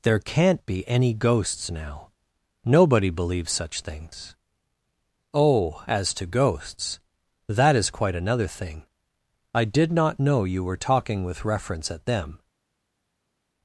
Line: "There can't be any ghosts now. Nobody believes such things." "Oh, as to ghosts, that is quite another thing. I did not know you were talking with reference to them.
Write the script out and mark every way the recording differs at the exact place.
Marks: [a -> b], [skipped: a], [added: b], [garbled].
"There can't be any ghosts now. Nobody believes such things." "Oh, as to ghosts, that is quite another thing. I did not know you were talking with reference [to -> at] them.